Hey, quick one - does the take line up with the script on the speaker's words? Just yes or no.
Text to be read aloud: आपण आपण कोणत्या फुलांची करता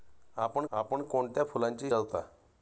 yes